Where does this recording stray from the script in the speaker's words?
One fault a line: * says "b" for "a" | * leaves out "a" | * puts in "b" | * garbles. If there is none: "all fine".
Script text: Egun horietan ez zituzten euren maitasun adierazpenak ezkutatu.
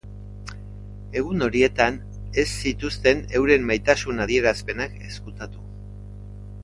all fine